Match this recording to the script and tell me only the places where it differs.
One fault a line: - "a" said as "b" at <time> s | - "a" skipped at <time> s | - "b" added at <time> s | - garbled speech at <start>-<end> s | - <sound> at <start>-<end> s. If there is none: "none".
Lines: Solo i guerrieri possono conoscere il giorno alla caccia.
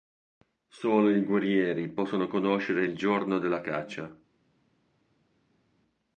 - "alla" said as "della" at 3.4 s